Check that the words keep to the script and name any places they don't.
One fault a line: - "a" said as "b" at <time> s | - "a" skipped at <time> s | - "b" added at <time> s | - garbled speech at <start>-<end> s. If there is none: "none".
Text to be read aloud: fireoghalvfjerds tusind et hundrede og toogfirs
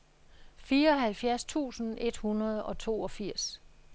none